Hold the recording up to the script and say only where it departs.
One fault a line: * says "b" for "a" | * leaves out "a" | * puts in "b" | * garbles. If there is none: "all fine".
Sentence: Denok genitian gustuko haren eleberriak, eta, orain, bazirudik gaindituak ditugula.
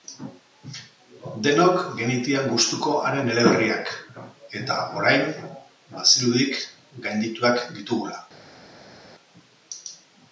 all fine